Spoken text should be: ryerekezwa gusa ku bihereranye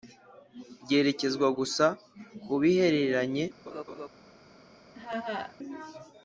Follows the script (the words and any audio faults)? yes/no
no